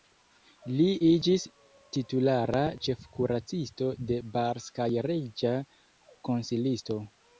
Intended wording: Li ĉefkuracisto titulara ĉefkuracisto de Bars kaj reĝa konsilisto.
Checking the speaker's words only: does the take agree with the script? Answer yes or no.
no